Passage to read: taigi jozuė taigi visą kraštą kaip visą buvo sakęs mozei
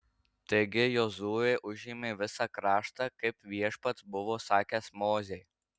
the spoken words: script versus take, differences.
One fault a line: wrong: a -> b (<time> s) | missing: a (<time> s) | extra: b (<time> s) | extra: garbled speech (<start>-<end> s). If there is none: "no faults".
wrong: taigi -> užėmė (1.7 s)
wrong: visą -> viešpats (3.6 s)